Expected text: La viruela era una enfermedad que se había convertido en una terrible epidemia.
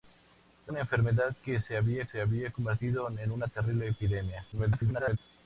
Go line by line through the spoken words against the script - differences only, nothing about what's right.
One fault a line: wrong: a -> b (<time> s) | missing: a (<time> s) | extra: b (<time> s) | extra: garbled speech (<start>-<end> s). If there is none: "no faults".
missing: viruela era (0.7 s)
extra: se había (2.0 s)
extra: garbled speech (4.5-5.2 s)